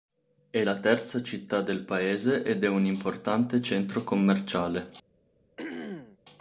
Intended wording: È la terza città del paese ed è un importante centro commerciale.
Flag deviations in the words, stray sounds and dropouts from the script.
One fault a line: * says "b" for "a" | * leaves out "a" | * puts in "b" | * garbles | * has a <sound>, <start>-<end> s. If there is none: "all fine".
* has a throat clearing, 5.6-6.2 s